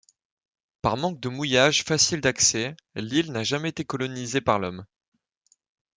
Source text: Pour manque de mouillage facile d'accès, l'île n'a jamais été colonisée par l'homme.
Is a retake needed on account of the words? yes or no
yes